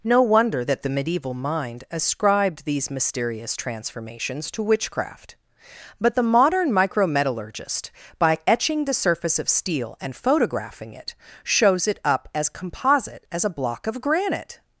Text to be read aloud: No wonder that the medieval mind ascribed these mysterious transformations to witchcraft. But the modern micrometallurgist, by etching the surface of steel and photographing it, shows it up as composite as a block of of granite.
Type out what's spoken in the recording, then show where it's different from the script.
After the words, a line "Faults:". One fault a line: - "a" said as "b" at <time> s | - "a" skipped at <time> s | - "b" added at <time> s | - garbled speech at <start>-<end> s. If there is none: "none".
No wonder that the medieval mind ascribed these mysterious transformations to witchcraft. But the modern micrometallurgist, by etching the surface of steel and photographing it, shows it up as composite as a block of granite.
Faults:
- "of" skipped at 14.0 s